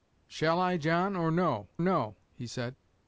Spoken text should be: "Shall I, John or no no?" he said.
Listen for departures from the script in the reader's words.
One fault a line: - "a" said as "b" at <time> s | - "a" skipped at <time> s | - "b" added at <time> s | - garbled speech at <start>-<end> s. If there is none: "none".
none